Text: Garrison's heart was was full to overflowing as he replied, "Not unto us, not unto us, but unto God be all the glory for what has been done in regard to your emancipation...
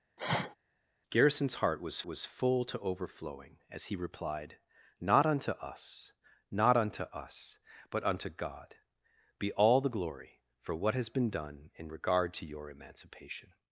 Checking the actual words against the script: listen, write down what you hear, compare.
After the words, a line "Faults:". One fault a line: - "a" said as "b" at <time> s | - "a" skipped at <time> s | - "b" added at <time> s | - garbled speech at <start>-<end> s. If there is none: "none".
Garrison's heart was was full to overflowing as he replied, "Not unto us, not unto us, but unto God be all the glory for what has been done in regard to your emancipation...
Faults:
none